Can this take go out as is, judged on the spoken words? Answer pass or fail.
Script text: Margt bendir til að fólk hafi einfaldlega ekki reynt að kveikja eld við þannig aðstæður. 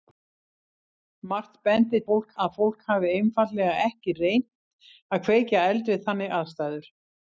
fail